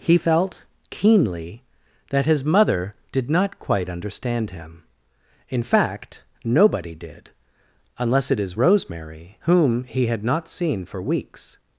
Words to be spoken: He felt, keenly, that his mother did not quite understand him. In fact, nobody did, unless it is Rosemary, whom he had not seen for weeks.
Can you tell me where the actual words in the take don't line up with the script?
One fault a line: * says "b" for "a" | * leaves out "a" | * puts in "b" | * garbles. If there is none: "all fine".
all fine